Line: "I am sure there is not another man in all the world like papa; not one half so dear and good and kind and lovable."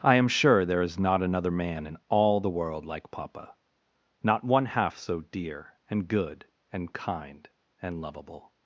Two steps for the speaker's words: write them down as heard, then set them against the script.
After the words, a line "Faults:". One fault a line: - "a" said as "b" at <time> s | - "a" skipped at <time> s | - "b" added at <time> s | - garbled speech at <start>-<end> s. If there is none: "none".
"I am sure there is not another man in all the world like papa; not one half so dear and good and kind and lovable."
Faults:
none